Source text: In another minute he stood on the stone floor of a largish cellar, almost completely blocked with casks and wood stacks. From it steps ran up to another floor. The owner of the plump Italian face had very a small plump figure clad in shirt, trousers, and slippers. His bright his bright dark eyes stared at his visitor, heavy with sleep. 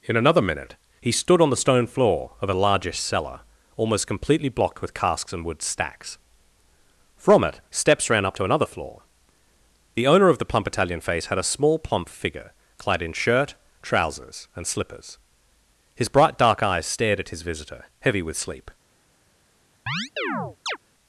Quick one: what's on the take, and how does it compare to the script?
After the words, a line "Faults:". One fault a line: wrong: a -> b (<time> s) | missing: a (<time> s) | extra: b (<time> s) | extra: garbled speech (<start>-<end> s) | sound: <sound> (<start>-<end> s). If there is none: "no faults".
In another minute he stood on the stone floor of a largish cellar, almost completely blocked with casks and wood stacks. From it steps ran up to another floor. The owner of the plump Italian face had a small plump figure clad in shirt, trousers, and slippers. His bright dark eyes stared at his visitor, heavy with sleep.
Faults:
missing: very (11.4 s)
missing: his bright (16.4 s)
sound: chirp (19.9-20.8 s)